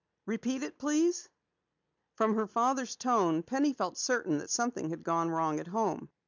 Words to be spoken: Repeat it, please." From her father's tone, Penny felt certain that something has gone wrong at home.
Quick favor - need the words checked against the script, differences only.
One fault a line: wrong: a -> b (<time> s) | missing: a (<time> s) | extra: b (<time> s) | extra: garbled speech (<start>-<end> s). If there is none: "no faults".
wrong: has -> had (4.9 s)